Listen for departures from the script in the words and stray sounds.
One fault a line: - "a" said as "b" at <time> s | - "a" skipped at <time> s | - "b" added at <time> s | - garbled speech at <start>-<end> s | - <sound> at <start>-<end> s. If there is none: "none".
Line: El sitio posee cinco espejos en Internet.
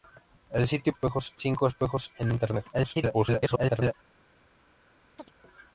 - "posee" said as "espejos" at 0.9 s
- garbled speech at 2.7-3.9 s
- chirp at 5.2-5.3 s